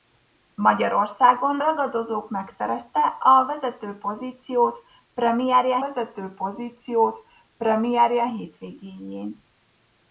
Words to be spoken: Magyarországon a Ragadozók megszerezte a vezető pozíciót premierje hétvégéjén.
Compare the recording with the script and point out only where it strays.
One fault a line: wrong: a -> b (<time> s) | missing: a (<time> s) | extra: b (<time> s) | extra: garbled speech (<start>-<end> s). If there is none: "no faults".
missing: a (1.6 s)
extra: vezető pozíciót premierje (5.8 s)